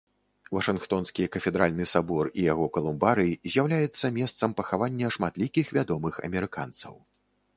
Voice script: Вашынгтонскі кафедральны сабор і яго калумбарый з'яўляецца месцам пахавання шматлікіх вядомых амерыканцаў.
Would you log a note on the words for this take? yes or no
no